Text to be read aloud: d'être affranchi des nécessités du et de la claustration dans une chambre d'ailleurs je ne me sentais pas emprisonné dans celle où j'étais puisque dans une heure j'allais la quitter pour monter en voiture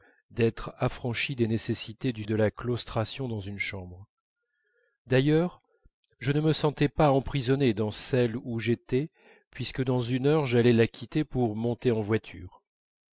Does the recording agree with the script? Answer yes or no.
yes